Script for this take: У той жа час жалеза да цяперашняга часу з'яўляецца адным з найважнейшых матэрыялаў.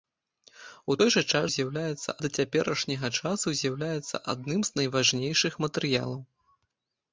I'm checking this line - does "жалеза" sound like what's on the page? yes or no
no